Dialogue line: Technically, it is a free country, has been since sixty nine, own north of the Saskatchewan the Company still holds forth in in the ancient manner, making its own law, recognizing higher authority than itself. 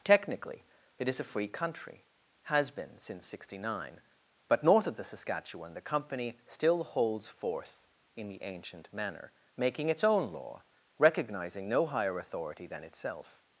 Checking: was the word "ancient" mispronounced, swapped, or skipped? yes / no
no